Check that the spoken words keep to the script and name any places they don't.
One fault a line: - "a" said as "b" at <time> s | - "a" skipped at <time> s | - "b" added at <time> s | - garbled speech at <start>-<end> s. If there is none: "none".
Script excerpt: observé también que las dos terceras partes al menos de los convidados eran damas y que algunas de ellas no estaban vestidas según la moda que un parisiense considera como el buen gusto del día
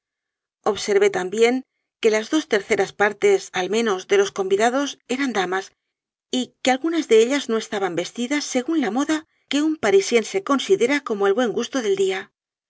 none